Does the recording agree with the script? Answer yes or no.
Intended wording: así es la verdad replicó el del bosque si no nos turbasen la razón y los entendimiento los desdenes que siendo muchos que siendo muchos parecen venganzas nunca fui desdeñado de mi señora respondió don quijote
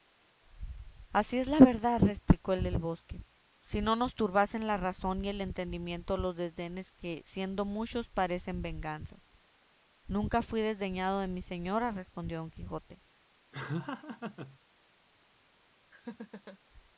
no